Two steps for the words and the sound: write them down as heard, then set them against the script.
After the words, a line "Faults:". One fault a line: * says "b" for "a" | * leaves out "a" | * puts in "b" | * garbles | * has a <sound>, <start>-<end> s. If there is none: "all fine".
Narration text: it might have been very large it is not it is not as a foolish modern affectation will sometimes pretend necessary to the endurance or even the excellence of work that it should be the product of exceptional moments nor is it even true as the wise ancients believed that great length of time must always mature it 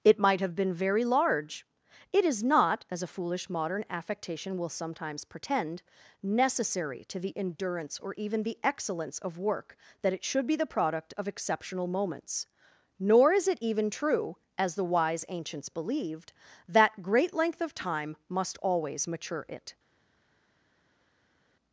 it might have been very large it is not as a foolish modern affectation will sometimes pretend necessary to the endurance or even the excellence of work that it should be the product of exceptional moments nor is it even true as the wise ancients believed that great length of time must always mature it
Faults:
* leaves out "it is not"